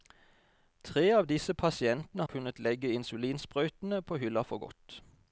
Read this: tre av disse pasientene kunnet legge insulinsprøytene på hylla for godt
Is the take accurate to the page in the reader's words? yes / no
yes